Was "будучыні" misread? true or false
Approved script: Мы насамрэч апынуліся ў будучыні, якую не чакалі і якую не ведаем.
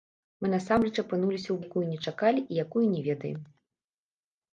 true